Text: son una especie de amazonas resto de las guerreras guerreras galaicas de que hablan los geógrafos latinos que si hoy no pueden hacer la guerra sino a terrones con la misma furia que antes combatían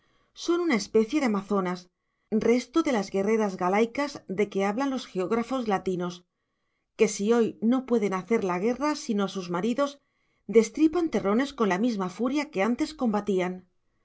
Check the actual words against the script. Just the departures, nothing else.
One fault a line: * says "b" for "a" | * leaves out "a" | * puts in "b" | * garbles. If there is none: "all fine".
* leaves out "guerreras"
* puts in "sus maridos destripan"